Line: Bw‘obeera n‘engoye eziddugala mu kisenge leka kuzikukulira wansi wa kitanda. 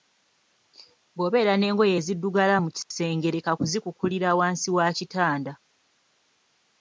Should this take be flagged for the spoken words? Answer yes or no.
no